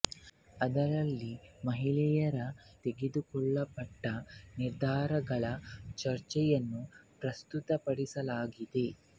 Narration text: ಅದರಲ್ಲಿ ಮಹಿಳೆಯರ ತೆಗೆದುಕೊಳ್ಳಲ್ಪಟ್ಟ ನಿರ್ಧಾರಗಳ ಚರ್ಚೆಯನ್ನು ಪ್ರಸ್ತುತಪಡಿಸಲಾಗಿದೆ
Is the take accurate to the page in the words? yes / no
yes